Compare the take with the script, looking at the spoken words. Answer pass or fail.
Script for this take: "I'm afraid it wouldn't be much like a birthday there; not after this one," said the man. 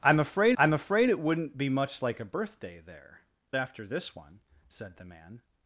fail